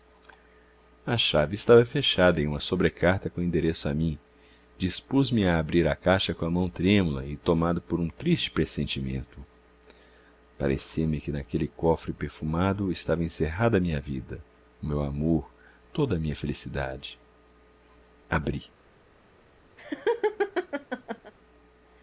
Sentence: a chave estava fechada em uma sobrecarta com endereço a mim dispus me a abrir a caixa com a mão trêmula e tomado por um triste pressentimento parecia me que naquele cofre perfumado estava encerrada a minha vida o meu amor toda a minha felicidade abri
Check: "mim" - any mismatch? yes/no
no